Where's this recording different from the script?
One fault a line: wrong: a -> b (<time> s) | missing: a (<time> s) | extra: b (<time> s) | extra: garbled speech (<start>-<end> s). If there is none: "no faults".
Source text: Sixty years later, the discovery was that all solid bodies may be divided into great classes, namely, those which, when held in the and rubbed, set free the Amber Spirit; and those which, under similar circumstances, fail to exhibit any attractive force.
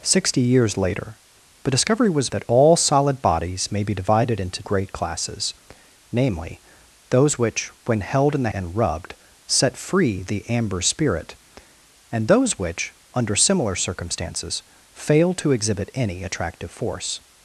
no faults